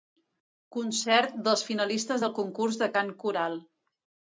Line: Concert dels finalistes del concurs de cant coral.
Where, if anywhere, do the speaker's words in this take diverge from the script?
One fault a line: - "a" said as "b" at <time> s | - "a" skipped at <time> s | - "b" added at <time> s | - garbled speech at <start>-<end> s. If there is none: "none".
none